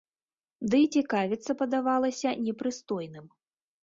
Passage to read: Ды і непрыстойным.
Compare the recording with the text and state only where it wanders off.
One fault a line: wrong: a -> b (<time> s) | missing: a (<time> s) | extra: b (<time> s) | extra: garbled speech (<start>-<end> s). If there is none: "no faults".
extra: цікавіцца падавалася (1.0 s)